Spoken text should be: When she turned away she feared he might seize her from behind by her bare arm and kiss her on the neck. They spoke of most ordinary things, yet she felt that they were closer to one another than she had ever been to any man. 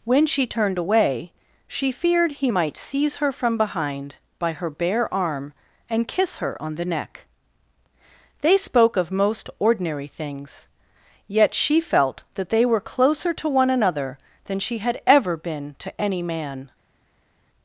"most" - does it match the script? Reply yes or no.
yes